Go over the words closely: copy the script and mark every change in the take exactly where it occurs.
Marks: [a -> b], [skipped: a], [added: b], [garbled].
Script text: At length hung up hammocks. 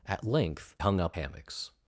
At length hung up hammocks.